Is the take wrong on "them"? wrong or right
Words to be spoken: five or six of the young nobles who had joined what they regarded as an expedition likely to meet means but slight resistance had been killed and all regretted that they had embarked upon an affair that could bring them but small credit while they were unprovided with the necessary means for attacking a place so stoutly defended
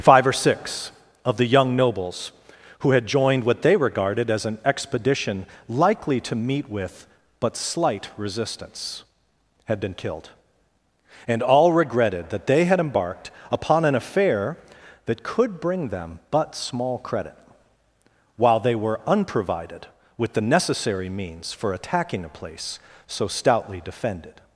right